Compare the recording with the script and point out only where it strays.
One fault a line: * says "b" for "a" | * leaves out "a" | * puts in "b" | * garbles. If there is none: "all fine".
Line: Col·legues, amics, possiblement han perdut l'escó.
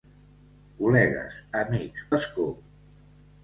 * leaves out "possiblement han perdut"